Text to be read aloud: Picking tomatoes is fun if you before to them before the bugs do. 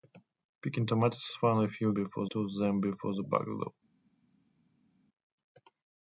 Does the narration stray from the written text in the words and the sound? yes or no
no